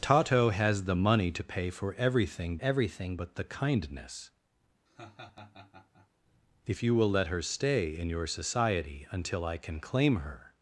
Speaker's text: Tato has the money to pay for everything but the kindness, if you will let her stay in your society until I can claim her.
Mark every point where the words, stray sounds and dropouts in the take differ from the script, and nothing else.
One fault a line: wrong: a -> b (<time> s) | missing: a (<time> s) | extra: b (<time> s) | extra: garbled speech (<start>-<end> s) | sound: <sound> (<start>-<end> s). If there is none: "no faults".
extra: everything (2.6 s)
sound: laugh (4.9-6.1 s)